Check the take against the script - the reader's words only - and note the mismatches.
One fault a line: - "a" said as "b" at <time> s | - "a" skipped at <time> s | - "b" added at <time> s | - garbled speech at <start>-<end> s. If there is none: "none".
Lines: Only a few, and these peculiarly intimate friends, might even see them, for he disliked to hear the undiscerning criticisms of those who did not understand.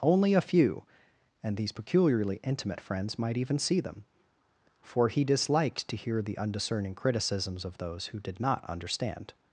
none